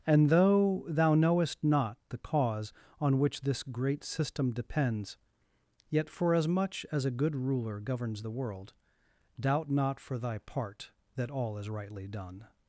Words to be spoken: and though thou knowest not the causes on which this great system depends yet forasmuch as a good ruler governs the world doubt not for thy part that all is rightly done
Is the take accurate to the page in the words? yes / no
no